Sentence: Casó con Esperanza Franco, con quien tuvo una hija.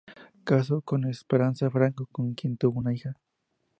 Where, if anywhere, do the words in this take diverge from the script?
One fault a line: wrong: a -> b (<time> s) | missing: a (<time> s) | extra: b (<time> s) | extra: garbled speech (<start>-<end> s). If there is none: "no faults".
no faults